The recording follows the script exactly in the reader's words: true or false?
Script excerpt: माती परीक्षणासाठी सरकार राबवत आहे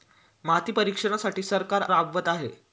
true